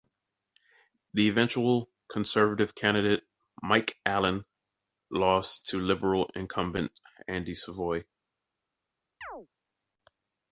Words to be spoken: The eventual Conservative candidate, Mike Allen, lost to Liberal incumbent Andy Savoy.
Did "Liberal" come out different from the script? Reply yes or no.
no